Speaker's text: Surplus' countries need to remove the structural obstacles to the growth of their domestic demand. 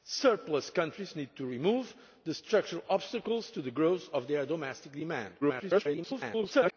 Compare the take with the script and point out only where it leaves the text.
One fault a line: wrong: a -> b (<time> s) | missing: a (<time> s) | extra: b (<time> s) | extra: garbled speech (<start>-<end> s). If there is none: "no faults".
extra: garbled speech (5.4-6.7 s)